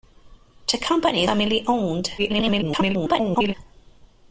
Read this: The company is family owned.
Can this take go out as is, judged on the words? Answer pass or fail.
fail